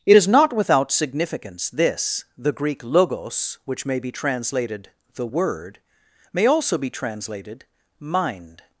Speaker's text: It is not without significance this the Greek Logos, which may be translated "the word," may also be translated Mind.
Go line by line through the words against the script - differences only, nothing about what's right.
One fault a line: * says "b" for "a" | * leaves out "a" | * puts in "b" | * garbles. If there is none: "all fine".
all fine